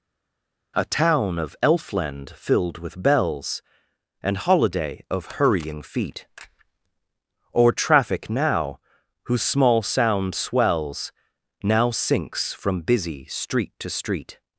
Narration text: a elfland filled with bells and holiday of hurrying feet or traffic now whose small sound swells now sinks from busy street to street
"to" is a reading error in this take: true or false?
false